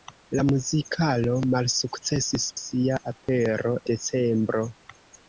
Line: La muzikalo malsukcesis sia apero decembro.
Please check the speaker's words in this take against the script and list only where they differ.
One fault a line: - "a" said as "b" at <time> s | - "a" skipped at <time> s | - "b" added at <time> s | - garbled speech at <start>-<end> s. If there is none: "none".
none